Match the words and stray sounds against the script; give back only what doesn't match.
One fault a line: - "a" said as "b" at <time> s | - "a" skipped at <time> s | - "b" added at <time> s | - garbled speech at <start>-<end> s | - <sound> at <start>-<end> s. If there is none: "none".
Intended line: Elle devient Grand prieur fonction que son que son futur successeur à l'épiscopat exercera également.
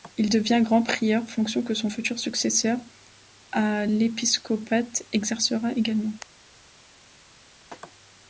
- "Elle" said as "Il" at 0.2 s
- "que son" skipped at 1.9 s